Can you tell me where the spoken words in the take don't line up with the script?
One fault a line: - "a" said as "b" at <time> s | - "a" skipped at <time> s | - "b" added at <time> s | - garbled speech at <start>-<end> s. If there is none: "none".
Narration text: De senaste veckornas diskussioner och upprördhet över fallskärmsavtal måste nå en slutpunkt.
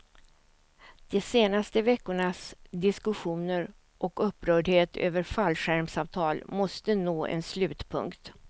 none